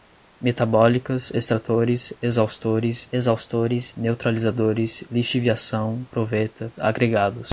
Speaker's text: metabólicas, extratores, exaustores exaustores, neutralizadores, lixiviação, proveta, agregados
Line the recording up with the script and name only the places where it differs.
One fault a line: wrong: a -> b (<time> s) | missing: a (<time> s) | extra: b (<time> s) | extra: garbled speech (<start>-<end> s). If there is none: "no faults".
no faults